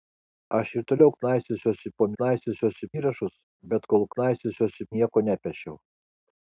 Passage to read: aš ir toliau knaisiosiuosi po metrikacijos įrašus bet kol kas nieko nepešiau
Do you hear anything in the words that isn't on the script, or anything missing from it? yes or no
yes